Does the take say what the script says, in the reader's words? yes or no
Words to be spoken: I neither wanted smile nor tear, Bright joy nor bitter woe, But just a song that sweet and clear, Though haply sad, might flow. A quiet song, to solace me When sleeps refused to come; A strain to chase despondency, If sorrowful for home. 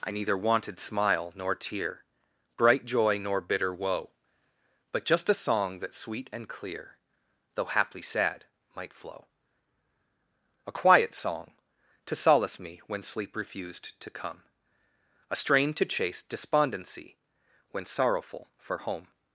no